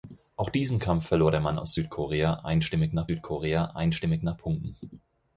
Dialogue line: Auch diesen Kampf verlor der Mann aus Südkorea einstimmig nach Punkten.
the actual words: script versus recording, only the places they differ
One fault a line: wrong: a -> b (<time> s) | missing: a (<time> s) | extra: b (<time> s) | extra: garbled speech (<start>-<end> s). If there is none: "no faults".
extra: Südkorea einstimmig nach (3.1 s)